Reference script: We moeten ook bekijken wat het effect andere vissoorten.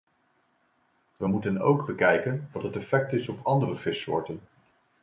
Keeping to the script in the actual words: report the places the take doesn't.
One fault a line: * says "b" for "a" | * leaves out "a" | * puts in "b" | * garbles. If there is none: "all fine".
* puts in "is op"